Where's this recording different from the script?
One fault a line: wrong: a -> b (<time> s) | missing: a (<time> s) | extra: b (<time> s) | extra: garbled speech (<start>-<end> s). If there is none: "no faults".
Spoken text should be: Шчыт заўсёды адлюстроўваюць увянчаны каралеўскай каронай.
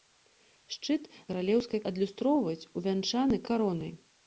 wrong: заўсёды -> каралеўскай (1.3 s)
missing: каралеўскай (3.4 s)